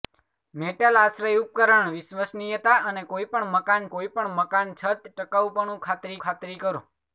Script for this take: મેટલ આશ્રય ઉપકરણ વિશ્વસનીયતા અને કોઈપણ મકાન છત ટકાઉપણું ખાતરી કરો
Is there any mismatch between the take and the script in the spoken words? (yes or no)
yes